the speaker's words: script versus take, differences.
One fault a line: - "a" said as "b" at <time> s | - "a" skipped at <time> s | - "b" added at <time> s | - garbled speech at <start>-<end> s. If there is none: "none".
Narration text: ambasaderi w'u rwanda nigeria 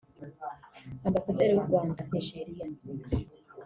none